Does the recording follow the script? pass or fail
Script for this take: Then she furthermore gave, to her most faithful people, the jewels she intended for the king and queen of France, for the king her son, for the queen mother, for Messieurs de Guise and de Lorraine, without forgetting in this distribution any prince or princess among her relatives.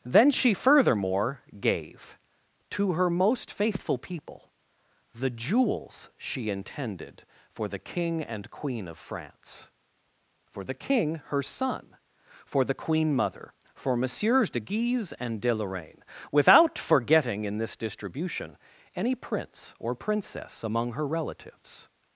pass